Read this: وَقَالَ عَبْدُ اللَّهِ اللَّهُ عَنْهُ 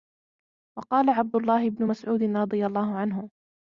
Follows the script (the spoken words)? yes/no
no